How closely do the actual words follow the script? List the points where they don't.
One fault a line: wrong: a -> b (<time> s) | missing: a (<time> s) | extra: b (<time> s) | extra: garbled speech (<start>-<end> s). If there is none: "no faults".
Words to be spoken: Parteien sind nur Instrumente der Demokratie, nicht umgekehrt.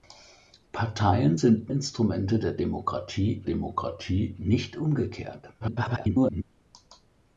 missing: nur (1.7 s)
extra: Demokratie (3.4 s)
extra: garbled speech (5.6-6.4 s)